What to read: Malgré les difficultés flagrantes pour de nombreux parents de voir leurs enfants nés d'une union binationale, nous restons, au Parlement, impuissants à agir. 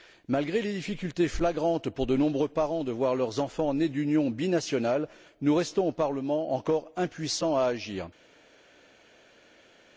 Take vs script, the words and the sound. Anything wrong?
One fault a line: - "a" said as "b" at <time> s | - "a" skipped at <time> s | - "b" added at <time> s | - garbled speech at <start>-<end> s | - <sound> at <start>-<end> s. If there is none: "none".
- "encore" added at 6.5 s